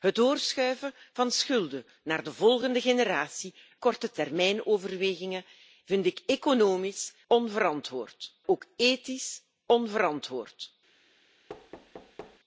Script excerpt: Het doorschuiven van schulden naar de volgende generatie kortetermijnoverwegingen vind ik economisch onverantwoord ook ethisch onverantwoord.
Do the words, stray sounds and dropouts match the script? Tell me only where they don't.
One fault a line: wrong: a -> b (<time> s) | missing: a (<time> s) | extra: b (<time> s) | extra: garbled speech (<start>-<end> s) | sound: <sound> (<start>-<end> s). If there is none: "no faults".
sound: thud (11.5-12.4 s)